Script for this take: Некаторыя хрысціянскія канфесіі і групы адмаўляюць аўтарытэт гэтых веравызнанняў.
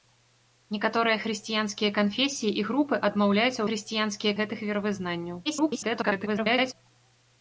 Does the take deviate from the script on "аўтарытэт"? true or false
true